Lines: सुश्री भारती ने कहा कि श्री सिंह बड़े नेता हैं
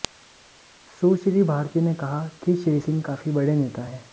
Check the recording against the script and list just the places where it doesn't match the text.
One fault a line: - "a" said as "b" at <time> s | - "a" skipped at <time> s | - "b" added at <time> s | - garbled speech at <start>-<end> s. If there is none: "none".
- "काफी" added at 3.0 s